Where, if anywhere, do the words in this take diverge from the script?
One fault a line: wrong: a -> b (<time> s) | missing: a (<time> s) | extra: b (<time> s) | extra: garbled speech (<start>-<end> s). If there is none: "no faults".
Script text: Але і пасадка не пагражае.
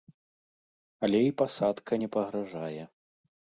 no faults